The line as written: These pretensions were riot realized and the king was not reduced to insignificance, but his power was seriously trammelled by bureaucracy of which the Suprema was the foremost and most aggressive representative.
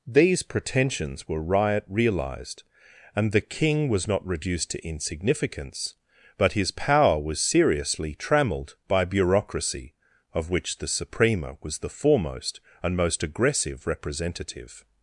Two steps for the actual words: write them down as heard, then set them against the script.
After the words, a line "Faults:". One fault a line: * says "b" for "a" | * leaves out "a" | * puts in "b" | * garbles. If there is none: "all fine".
These pretensions were riot realized and the king was not reduced to insignificance, but his power was seriously trammelled by bureaucracy of which the Suprema was the foremost and most aggressive representative.
Faults:
all fine